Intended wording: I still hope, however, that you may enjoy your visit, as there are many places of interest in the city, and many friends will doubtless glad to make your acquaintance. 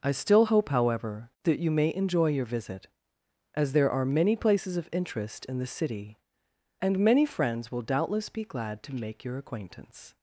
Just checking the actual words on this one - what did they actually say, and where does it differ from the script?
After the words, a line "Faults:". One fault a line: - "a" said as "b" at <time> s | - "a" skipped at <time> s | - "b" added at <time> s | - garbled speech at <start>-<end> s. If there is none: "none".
I still hope, however, that you may enjoy your visit, as there are many places of interest in the city, and many friends will doubtless be glad to make your acquaintance.
Faults:
- "be" added at 8.3 s